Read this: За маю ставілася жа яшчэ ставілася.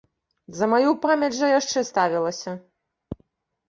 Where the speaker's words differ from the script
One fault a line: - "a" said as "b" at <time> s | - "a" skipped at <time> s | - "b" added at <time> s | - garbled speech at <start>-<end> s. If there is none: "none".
- "ставілася" said as "памяць" at 1.1 s